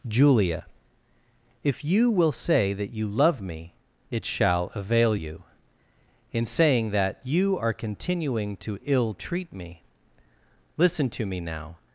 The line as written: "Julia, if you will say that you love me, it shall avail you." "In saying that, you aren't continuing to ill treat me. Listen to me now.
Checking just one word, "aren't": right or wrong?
wrong